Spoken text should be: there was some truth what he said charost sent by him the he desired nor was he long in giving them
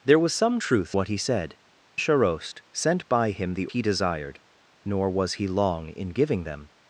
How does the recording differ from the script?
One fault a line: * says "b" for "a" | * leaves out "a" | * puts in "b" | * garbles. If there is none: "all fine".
all fine